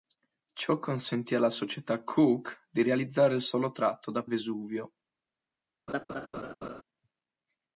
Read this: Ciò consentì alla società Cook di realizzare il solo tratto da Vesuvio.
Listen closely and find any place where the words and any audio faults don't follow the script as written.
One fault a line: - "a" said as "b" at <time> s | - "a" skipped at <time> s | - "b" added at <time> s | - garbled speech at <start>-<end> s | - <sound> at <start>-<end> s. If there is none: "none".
- laugh at 5.9-6.8 s